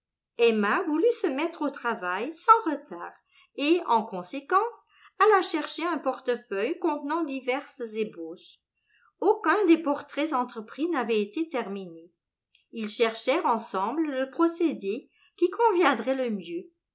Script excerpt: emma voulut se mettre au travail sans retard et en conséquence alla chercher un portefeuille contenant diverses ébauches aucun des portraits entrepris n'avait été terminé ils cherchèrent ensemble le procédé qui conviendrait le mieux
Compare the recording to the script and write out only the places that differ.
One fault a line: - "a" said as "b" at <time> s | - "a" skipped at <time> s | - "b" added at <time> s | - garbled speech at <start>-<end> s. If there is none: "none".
none